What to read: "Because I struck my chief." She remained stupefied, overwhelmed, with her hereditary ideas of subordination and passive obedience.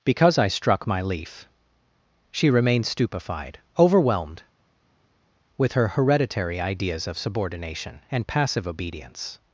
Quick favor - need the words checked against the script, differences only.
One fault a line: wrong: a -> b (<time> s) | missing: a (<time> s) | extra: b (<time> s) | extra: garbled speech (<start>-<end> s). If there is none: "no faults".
wrong: chief -> leaf (1.0 s)